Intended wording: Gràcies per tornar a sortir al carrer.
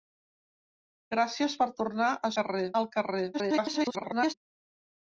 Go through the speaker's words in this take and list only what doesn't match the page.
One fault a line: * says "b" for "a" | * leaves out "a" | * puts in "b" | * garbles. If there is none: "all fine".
* says "carrer" for "sortir"
* garbles